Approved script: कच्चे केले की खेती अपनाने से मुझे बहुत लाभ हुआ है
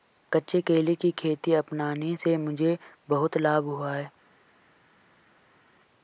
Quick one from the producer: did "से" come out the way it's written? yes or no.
yes